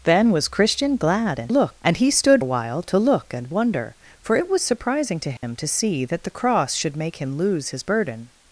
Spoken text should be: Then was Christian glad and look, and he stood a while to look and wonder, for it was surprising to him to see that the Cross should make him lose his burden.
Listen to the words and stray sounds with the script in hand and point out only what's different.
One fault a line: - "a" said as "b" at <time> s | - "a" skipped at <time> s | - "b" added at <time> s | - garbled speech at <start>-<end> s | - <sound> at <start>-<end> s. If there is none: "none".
- dropout at 5.4-5.4 s